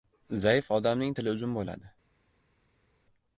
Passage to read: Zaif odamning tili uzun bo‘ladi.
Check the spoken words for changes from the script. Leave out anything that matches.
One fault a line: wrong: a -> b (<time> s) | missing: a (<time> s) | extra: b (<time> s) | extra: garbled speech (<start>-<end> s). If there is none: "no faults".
no faults